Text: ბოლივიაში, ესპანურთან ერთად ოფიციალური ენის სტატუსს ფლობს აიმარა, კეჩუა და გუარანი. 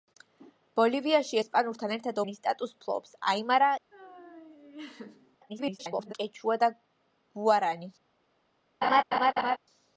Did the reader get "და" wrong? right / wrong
right